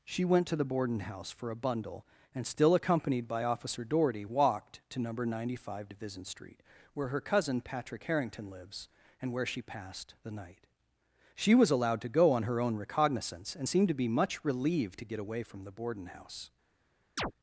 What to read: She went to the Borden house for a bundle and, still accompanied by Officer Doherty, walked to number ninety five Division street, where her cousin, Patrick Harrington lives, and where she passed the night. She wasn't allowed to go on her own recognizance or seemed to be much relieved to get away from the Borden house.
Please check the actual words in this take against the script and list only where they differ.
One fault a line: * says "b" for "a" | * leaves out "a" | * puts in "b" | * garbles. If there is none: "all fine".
* says "was" for "wasn't"
* says "and" for "or"